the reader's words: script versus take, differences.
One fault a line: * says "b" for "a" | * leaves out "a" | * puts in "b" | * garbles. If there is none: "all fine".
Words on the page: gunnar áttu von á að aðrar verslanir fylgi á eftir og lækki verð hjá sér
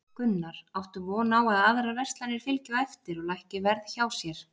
all fine